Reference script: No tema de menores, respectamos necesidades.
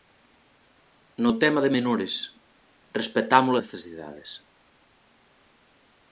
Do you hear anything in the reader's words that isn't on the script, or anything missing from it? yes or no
no